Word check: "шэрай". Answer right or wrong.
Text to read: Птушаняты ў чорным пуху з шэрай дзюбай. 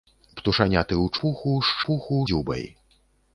wrong